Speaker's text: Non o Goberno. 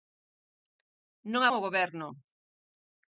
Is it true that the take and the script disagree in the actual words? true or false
false